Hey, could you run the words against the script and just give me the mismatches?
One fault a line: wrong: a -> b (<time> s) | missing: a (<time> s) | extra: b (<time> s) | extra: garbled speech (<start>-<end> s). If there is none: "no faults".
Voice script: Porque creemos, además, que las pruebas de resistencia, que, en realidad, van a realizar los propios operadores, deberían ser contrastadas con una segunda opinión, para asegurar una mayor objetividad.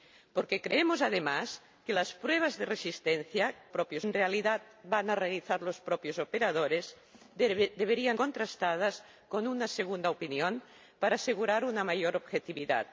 wrong: que -> propios (3.7 s)
missing: ser (8.2 s)